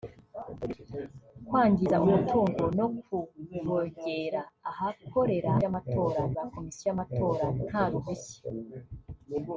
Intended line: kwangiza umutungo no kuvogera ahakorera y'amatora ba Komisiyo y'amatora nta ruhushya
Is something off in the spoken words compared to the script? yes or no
no